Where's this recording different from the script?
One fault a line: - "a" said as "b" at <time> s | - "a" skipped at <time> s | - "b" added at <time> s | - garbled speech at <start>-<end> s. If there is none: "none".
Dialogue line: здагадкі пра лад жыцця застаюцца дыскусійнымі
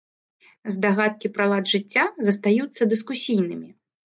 none